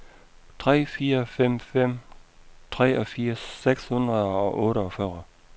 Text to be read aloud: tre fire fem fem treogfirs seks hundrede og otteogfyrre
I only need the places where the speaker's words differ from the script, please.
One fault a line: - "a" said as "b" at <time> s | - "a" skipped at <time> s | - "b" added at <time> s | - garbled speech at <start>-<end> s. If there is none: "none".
none